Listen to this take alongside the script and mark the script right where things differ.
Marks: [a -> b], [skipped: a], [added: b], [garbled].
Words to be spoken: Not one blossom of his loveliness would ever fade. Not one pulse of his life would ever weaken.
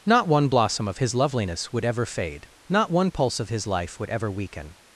Not one blossom of his loveliness would ever fade. Not one pulse of his life would ever weaken.